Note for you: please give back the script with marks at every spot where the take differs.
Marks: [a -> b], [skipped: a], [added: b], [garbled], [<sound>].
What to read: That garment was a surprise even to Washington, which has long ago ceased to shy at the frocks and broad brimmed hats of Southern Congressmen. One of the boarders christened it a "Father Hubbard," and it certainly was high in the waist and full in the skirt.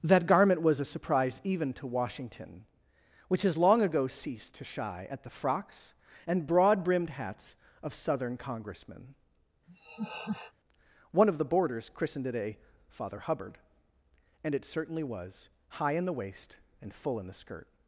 That garment was a surprise even to Washington, which has long ago ceased to shy at the frocks and broad brimmed hats of Southern Congressmen. [laugh] One of the boarders christened it a "Father Hubbard," and it certainly was high in the waist and full in the skirt.